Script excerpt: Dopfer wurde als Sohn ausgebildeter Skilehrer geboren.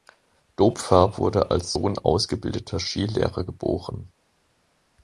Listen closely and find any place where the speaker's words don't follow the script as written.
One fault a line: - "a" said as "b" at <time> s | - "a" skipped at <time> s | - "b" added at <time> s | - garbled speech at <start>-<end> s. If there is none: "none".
none